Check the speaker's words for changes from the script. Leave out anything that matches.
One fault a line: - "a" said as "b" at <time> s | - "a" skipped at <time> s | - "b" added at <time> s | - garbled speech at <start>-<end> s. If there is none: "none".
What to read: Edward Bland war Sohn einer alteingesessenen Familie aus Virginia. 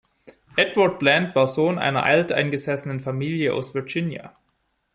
none